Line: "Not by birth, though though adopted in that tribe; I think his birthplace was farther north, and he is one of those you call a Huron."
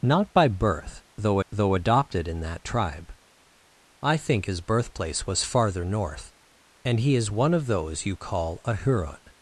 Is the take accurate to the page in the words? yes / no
yes